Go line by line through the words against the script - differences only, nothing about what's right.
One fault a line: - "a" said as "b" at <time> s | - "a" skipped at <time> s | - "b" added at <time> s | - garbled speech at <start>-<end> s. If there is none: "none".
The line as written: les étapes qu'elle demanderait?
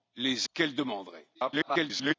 - "étapes" skipped at 0.5 s
- garbled speech at 1.3-2.1 s